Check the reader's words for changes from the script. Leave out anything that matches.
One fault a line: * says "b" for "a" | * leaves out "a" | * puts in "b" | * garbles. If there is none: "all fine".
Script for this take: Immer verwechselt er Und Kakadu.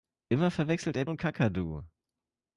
all fine